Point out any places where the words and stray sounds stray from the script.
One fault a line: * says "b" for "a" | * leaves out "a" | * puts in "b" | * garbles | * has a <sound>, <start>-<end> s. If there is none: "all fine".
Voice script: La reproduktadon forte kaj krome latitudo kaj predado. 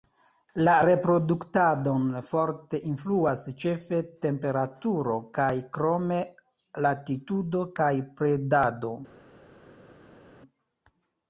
* puts in "influas ĉefe temperaturo"